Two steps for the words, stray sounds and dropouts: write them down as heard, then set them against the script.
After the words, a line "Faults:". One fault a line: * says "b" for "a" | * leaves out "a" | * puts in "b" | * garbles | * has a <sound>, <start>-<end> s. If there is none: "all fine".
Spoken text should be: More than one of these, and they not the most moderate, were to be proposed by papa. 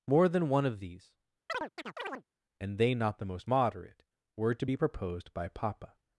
More than one of these, and they not the most moderate, were to be proposed by papa.
Faults:
* has a chirp, 1.5-2.2 s